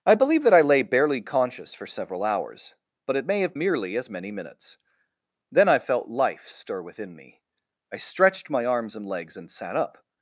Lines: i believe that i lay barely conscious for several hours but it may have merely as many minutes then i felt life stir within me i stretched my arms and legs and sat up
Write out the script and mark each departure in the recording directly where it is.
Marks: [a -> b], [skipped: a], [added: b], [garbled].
i believe that i lay barely conscious for several hours but it may have merely as many minutes then i felt life stir within me i stretched my arms and legs and sat up